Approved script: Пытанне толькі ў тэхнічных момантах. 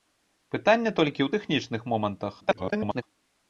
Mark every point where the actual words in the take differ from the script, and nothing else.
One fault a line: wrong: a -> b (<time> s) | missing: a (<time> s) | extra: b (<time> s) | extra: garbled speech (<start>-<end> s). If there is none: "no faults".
extra: garbled speech (2.4-3.0 s)